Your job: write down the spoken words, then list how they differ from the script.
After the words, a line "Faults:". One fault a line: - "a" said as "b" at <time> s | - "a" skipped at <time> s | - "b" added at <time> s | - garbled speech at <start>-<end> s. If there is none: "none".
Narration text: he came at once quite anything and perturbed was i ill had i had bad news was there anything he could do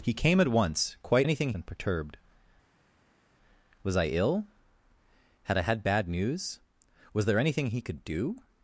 he came at once quite anything and perturbed was i ill had i had bad news was there anything he could do
Faults:
none